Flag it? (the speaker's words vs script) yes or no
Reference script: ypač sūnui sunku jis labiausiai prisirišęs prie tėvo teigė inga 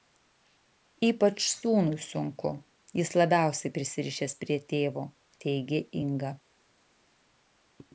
no